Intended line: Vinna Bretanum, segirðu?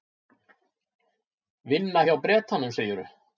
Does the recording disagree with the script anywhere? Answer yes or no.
yes